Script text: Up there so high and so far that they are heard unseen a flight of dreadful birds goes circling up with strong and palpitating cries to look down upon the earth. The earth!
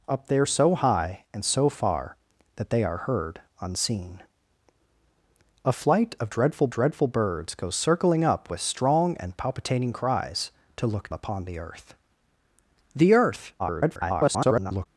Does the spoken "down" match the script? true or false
false